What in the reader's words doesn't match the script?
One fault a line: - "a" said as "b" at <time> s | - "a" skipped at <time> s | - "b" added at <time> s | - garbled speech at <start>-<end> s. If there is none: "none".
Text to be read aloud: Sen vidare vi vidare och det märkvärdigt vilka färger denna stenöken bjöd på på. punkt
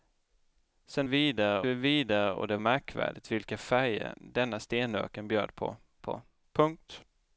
none